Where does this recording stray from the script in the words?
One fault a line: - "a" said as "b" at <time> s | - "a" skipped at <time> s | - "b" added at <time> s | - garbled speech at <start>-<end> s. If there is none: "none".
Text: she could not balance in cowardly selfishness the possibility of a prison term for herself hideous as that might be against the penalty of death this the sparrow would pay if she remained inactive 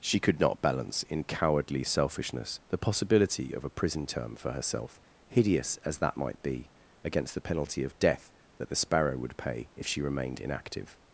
- "this" said as "that" at 8.6 s